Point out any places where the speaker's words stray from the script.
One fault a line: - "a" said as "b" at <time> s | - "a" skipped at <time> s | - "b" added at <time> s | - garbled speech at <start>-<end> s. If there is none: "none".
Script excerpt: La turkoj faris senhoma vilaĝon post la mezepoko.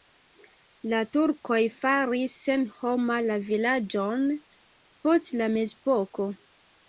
- "la" added at 3.2 s